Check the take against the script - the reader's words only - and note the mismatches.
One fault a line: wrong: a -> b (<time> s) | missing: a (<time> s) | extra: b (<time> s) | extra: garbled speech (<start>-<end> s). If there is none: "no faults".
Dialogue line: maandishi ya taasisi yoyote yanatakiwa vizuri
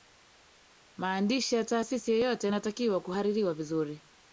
extra: kuhaririwa (3.0 s)